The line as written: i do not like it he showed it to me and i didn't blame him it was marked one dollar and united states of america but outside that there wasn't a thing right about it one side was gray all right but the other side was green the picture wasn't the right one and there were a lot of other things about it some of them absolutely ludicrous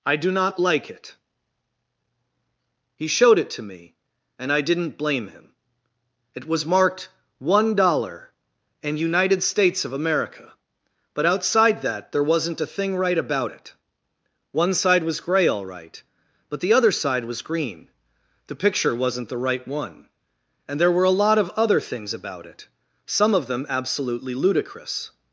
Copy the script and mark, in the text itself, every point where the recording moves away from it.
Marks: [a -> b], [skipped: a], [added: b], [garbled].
i do not like it he showed it to me and i didn't blame him it was marked one dollar and united states of america but outside that there wasn't a thing right about it one side was gray all right but the other side was green the picture wasn't the right one and there were a lot of other things about it some of them absolutely ludicrous